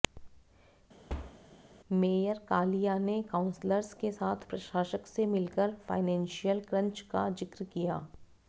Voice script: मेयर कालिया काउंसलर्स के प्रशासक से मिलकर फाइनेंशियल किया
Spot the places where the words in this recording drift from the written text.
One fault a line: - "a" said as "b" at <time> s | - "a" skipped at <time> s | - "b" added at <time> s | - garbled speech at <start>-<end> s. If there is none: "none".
- "ने" added at 3.0 s
- "साथ" added at 4.1 s
- "क्रंच का जिक्र" added at 6.7 s